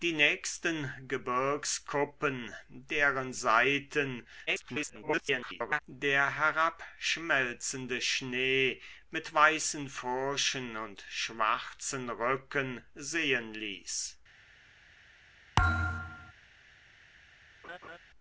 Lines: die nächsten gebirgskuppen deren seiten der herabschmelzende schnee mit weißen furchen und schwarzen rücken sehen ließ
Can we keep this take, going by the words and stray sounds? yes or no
no